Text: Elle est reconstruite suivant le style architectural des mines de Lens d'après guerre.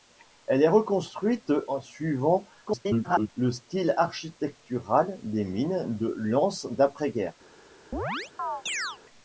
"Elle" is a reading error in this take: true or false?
false